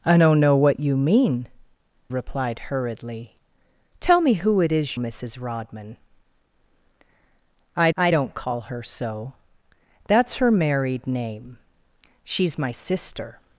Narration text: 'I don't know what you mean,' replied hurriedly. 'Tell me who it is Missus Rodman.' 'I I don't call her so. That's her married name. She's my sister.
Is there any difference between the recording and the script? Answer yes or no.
no